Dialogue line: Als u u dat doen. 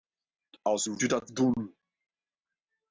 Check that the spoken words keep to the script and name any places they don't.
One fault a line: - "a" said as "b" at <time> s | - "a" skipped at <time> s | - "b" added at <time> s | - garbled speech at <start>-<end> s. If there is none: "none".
none